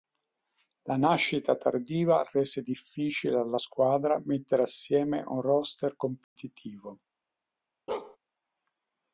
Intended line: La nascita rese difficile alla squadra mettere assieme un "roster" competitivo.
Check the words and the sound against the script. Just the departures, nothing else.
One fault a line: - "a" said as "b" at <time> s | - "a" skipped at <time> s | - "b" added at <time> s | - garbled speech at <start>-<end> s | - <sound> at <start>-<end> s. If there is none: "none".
- "tardiva" added at 1.6 s
- dropout at 6.2-6.4 s
- bark at 7.9-8.2 s